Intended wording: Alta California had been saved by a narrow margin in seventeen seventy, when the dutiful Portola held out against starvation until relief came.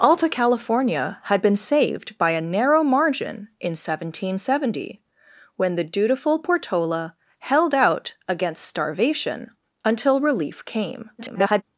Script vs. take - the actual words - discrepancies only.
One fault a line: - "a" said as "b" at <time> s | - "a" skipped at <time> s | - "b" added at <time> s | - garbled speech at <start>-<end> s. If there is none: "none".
- garbled speech at 11.2-11.6 s